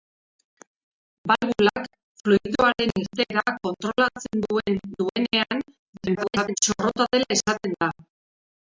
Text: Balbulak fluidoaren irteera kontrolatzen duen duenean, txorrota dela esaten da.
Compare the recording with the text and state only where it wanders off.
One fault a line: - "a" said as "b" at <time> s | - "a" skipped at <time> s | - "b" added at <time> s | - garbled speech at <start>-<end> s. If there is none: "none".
- garbled speech at 5.9-6.6 s